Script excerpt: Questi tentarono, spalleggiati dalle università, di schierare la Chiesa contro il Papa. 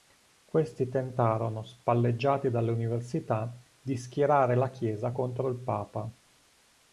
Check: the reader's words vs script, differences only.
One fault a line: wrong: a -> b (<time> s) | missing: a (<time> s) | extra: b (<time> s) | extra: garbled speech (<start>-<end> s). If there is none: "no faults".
no faults